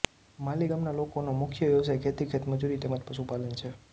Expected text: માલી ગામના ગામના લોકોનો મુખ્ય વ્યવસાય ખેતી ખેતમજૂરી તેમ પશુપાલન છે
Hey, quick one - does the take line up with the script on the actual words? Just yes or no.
no